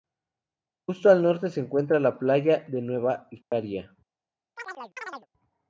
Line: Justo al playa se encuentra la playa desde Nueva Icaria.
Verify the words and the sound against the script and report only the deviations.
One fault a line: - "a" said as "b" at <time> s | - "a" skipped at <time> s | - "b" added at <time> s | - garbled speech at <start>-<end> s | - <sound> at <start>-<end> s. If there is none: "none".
- "playa" said as "norte" at 1.2 s
- "desde" said as "de" at 2.6 s
- dropout at 3.4-3.5 s
- chirp at 4.6-5.3 s